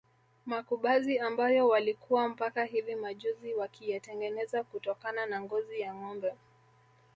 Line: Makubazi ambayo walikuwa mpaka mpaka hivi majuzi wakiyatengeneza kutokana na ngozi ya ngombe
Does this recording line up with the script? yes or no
no